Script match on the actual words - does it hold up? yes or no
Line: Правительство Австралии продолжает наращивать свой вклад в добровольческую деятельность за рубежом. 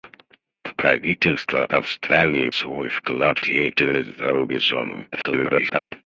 no